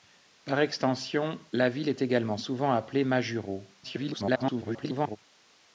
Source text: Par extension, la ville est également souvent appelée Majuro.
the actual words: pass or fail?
fail